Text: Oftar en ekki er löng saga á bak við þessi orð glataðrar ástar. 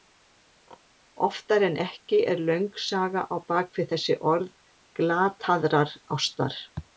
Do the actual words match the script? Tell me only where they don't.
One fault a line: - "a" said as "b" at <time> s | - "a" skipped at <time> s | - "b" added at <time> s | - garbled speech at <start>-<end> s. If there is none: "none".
none